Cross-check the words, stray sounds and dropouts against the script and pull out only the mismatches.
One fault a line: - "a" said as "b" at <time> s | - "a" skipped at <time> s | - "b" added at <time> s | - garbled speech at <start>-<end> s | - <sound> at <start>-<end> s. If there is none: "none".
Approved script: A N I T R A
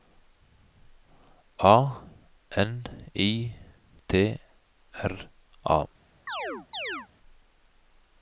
- chirp at 6.3-7.1 s